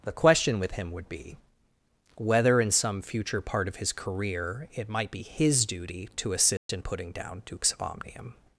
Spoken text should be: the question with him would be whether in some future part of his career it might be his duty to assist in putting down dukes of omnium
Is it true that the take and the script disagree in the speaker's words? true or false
false